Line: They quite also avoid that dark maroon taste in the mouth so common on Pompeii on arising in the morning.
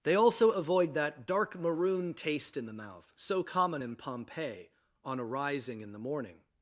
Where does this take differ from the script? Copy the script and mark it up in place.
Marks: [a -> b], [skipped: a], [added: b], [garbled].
They [skipped: quite] also avoid that dark maroon taste in the mouth so common [on -> in] Pompeii on arising in the morning.